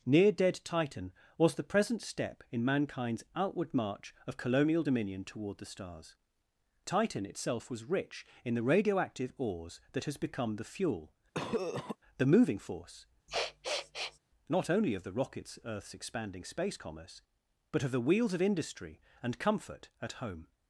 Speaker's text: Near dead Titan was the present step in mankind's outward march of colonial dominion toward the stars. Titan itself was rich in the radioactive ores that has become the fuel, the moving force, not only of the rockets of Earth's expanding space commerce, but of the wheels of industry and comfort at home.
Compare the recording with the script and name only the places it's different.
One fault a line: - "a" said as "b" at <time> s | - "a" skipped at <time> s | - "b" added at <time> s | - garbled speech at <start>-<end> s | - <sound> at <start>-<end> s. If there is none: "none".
- cough at 11.3-12.0 s
- sniff at 13.3-14.2 s
- "of" skipped at 15.6 s